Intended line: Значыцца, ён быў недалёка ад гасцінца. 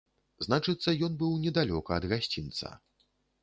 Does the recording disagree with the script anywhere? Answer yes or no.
no